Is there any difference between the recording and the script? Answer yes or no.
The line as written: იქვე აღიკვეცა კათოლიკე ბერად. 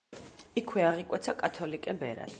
no